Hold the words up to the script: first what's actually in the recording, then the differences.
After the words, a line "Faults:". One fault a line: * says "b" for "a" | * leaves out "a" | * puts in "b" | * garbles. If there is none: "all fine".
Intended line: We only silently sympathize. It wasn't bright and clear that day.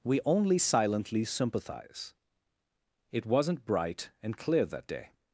We only silently sympathize. It wasn't bright and clear that day.
Faults:
all fine